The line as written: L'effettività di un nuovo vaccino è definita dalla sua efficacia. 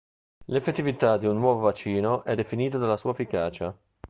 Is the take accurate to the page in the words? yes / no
yes